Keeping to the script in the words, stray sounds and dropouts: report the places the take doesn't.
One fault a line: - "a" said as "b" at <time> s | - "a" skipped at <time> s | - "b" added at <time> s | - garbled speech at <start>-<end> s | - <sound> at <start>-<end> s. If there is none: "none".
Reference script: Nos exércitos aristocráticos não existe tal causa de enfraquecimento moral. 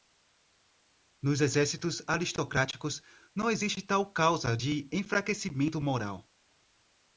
none